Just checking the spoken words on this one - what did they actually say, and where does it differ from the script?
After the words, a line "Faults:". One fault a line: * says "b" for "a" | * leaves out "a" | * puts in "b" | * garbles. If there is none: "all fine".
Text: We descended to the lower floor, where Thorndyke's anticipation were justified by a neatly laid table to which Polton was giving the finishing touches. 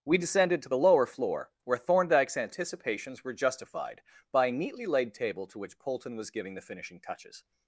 We descended to the lower floor, where Thorndyke's anticipations were justified by a neatly laid table to which Polton was giving the finishing touches.
Faults:
* says "anticipations" for "anticipation"